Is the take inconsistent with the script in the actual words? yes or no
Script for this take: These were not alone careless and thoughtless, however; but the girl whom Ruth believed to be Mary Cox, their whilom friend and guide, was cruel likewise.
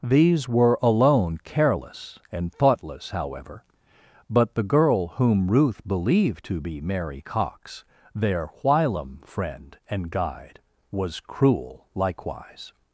yes